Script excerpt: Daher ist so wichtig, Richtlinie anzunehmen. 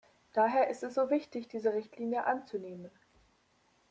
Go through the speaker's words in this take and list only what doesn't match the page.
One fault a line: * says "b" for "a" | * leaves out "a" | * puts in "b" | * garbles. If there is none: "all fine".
* puts in "es"
* puts in "diese"